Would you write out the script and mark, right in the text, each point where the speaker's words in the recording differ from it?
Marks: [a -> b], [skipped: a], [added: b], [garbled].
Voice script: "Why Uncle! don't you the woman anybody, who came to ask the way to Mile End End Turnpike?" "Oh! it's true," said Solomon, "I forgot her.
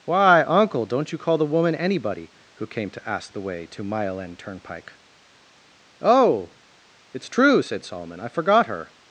"Why Uncle! don't you [added: call] the woman anybody, who came to ask the way to Mile End [skipped: End] Turnpike?" "Oh! it's true," said Solomon, "I forgot her.